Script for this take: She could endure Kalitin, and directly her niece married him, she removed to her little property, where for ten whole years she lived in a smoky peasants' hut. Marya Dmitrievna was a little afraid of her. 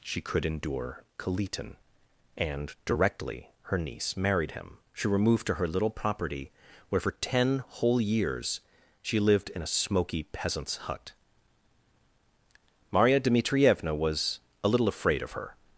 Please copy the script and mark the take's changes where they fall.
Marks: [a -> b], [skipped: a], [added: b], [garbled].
She could endure Kalitin, and directly her niece married him, she removed to her little property, where for ten whole years she lived in a smoky peasants' hut. Marya Dmitrievna was a little afraid of her.